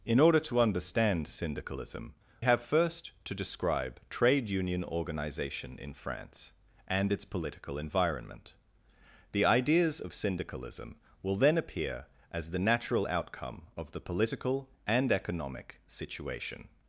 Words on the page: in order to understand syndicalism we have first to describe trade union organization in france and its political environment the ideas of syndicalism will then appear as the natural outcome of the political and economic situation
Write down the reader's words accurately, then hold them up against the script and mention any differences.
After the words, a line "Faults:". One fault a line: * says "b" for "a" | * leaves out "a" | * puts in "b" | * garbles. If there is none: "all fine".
in order to understand syndicalism have first to describe trade union organization in france and its political environment the ideas of syndicalism will then appear as the natural outcome of the political and economic situation
Faults:
* leaves out "we"